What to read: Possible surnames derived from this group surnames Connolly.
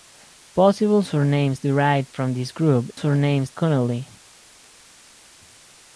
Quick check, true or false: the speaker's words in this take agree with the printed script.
true